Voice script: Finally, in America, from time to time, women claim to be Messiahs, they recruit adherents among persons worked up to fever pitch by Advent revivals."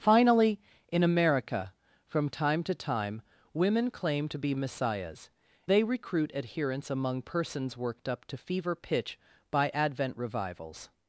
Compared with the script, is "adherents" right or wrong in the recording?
right